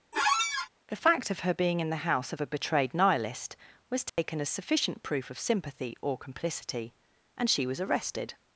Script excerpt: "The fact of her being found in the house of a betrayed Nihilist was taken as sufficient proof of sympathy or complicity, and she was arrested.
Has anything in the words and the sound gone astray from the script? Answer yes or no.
yes